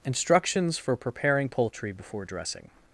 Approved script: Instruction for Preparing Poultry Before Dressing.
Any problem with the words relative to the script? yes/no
yes